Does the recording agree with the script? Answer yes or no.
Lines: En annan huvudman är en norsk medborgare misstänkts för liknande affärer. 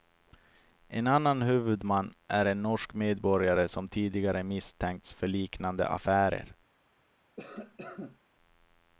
no